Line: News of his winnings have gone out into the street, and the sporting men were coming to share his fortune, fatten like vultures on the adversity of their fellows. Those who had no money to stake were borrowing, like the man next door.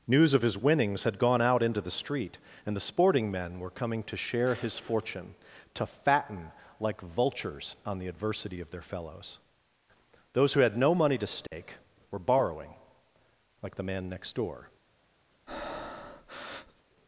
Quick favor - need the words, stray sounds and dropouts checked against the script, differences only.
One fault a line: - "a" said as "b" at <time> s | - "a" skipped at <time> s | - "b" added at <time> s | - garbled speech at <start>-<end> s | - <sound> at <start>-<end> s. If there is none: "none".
- "have" said as "had" at 1.0 s
- "to" added at 5.7 s
- dropout at 11.5-11.5 s
- breath at 15.5-16.8 s